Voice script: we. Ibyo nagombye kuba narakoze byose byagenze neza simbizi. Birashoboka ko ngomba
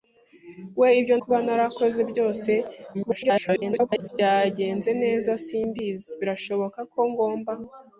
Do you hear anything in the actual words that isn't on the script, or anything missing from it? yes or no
yes